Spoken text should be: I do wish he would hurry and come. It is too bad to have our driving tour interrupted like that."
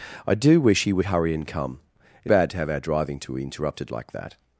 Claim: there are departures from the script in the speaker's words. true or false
true